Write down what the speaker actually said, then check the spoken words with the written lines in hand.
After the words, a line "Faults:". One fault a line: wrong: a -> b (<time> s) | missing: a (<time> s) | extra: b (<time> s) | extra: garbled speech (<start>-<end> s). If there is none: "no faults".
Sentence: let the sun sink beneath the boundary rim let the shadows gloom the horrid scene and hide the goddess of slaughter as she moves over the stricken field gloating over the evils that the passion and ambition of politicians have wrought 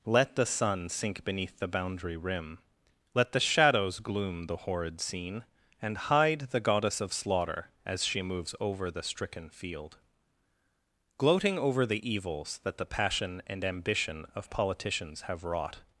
let the sun sink beneath the boundary rim let the shadows gloom the horrid scene and hide the goddess of slaughter as she moves over the stricken field gloating over the evils that the passion and ambition of politicians have wrought
Faults:
no faults